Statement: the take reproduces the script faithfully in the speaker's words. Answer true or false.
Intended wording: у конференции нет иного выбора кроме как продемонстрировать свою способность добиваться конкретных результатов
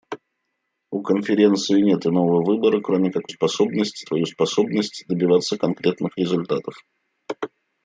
false